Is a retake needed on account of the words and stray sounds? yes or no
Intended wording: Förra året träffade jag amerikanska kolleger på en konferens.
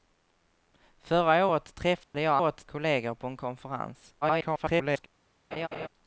yes